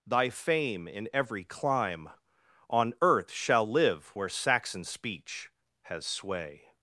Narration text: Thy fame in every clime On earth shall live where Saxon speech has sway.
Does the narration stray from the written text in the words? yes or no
no